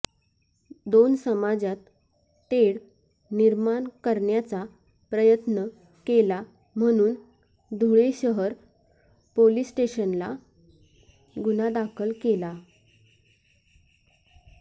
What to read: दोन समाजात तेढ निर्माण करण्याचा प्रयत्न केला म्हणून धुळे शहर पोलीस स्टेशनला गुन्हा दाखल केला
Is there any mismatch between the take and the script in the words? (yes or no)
no